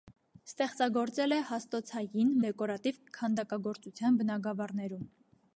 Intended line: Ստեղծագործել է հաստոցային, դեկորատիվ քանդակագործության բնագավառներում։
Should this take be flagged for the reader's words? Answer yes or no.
no